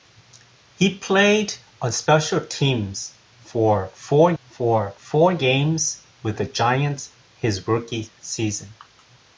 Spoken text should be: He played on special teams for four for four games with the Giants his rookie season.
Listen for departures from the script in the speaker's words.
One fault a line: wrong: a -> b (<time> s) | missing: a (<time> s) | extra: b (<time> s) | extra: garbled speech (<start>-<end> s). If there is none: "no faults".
no faults